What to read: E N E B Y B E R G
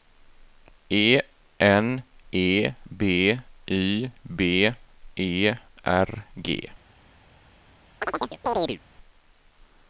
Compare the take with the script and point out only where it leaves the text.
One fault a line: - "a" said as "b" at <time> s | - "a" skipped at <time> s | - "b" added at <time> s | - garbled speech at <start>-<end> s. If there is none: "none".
none